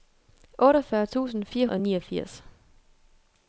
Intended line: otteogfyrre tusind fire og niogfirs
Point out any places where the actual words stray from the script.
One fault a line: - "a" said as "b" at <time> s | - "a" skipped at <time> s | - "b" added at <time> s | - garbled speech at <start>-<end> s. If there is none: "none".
none